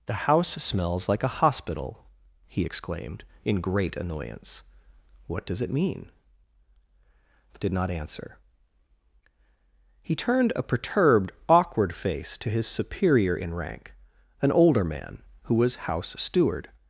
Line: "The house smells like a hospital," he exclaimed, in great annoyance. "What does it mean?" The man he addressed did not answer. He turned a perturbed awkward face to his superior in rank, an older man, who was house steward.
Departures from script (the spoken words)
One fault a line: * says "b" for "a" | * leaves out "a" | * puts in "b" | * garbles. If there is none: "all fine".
* leaves out "man he addressed"